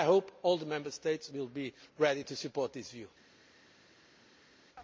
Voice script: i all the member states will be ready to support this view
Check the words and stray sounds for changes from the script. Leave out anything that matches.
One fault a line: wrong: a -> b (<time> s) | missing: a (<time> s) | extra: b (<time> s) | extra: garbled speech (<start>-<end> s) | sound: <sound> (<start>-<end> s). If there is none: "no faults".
extra: hope (0.1 s)